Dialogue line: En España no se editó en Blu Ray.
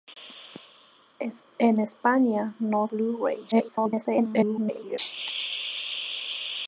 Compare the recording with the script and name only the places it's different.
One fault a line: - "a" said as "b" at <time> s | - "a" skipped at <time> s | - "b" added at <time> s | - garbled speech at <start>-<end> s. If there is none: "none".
- "se editó en" skipped at 2.9 s
- garbled speech at 3.5-5.0 s